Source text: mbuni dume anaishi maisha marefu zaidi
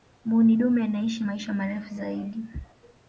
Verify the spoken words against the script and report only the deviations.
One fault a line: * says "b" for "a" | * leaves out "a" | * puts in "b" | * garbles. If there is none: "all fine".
all fine